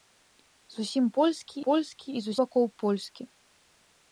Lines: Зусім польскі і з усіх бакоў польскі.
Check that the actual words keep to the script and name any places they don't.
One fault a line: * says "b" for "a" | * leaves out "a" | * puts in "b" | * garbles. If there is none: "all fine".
* puts in "польскі"
* leaves out "усіх"